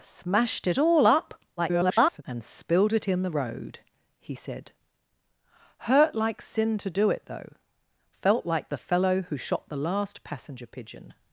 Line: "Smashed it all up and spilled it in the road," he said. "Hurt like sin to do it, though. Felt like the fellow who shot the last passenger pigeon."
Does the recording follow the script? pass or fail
fail